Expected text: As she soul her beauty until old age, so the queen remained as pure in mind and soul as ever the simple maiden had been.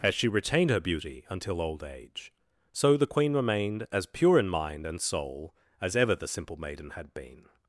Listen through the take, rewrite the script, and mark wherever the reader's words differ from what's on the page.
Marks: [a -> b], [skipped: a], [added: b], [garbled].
As she [soul -> retained] her beauty until old age, so the queen remained as pure in mind and soul as ever the simple maiden had been.